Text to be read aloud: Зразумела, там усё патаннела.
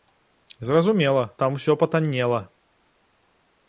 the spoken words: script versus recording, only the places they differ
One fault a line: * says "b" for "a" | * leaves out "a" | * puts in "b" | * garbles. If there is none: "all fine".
all fine